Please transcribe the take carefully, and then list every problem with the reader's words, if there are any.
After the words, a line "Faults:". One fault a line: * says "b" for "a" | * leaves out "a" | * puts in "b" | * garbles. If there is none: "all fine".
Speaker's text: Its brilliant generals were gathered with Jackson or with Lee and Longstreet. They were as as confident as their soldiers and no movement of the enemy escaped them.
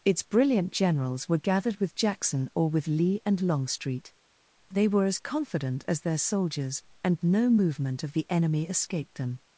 Its brilliant generals were gathered with Jackson or with Lee and Longstreet. They were as confident as their soldiers and no movement of the enemy escaped them.
Faults:
* leaves out "as"